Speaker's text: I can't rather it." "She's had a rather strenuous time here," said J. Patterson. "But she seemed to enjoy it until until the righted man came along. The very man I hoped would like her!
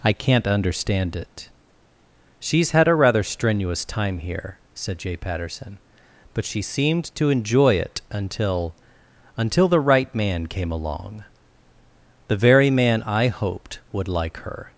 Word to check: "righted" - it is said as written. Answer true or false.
false